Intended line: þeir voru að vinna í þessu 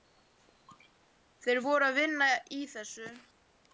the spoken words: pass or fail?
pass